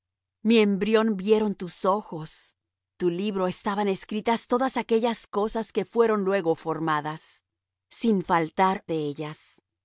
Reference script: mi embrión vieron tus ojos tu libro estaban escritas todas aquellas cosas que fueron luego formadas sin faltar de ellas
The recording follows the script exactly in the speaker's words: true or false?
true